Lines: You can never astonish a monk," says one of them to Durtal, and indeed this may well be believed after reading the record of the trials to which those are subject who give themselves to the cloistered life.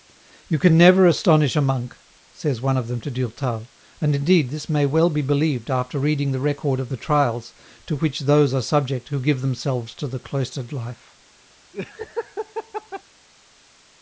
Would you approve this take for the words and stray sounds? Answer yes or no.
no